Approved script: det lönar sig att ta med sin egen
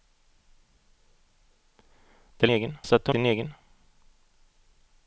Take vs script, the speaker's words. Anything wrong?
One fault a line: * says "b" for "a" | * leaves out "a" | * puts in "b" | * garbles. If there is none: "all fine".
* says "egen" for "lönar"
* leaves out "med"